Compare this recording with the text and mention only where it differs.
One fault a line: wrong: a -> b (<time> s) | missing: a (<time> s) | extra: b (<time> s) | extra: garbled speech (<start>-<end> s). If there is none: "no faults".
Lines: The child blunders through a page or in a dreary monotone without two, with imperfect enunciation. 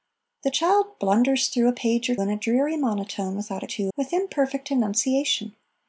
no faults